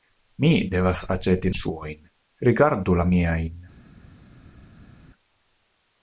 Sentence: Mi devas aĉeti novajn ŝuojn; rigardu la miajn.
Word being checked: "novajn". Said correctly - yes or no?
no